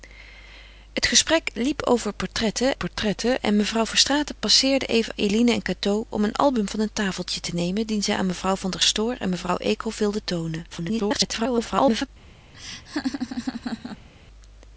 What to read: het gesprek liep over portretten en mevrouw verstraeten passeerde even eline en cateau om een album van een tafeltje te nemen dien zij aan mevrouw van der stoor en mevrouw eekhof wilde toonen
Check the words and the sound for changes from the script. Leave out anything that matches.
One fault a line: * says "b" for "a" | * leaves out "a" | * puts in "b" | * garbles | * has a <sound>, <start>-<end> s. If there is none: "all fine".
* puts in "portretten"
* garbles
* has a laugh, 12.5-14.1 s